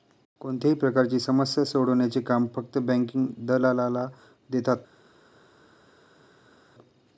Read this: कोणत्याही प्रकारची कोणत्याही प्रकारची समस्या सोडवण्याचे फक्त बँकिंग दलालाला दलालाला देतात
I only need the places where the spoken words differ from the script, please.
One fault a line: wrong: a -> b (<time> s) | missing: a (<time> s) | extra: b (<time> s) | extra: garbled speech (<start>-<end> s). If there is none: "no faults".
missing: कोणत्याही प्रकारची (1.2 s)
extra: काम (2.2 s)
missing: दलालाला (4.1 s)